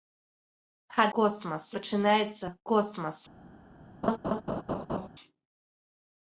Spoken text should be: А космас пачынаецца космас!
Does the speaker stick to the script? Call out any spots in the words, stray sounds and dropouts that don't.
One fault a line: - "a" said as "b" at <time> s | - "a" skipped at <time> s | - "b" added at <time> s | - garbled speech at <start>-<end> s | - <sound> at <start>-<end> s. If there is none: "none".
- laugh at 4.0-5.1 s